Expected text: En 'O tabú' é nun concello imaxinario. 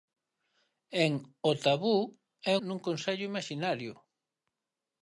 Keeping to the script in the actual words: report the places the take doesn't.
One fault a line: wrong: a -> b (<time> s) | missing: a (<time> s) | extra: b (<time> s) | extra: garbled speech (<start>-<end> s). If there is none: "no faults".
no faults